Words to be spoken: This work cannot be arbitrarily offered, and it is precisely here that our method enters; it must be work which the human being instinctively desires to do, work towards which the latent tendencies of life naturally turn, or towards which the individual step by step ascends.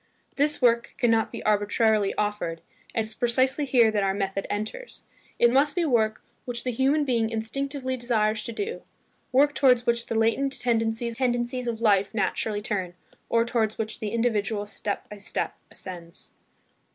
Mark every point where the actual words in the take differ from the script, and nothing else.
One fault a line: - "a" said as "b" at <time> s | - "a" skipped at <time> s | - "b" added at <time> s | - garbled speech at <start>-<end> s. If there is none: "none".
- "it" skipped at 3.0 s
- "tendencies" added at 11.1 s